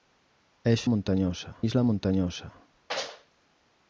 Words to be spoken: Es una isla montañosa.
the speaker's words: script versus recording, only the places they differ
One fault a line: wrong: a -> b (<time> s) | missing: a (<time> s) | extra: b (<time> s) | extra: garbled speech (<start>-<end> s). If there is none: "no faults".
wrong: una -> montañosa (0.9 s)